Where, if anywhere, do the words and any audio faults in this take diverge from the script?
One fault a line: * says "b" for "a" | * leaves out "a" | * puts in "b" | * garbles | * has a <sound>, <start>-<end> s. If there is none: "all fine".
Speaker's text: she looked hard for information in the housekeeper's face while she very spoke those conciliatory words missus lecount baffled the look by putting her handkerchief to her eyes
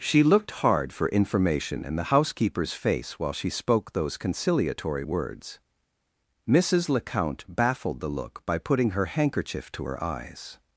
* leaves out "very"